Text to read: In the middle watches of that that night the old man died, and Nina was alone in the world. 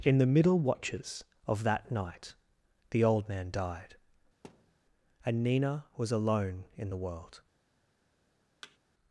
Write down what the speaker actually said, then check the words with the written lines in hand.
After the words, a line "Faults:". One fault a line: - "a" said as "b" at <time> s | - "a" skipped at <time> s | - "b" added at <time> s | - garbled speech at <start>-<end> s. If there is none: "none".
In the middle watches of that night the old man died, and Nina was alone in the world.
Faults:
- "that" skipped at 1.9 s